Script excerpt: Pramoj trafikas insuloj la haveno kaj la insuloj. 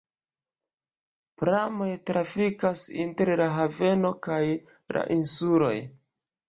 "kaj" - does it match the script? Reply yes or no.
yes